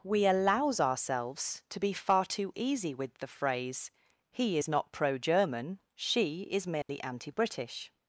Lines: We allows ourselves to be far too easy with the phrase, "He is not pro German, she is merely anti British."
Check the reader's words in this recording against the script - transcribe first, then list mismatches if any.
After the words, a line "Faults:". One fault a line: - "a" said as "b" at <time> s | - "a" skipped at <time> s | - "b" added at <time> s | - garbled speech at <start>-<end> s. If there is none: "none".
We allows ourselves to be far too easy with the phrase, "He is not pro German, she is merely anti British."
Faults:
none